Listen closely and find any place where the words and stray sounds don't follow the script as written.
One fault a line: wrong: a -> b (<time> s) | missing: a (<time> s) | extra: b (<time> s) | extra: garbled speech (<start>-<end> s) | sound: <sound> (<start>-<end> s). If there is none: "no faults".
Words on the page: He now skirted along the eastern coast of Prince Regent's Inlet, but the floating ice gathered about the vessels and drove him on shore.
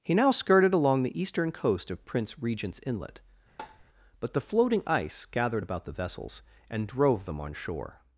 sound: tap (3.6-3.8 s)
wrong: him -> them (7.2 s)